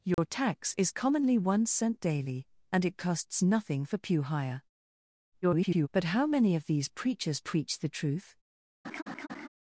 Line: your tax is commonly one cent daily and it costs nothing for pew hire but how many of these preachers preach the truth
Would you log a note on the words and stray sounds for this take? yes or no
yes